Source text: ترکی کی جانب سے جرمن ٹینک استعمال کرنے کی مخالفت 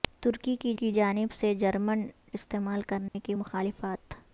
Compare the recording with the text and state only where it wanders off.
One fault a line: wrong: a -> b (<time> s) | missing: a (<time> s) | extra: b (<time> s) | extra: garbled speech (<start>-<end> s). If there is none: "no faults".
extra: کی (0.7 s)
missing: ٹینک (2.1 s)